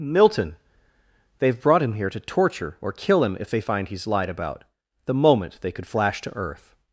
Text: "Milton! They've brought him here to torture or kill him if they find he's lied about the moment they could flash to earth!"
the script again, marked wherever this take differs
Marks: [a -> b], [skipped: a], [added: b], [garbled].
"Milton! They've brought him here to torture or kill him if they find he's lied about the moment they could flash to earth!"